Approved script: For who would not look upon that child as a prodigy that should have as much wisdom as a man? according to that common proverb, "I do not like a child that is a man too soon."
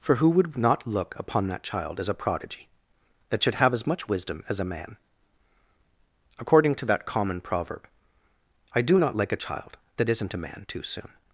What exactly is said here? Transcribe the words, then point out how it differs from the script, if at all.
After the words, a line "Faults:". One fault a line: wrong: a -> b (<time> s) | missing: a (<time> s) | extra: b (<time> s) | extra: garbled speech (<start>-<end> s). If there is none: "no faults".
For who would not look upon that child as a prodigy that should have as much wisdom as a man? according to that common proverb, "I do not like a child that isn't a man too soon."
Faults:
wrong: is -> isn't (10.1 s)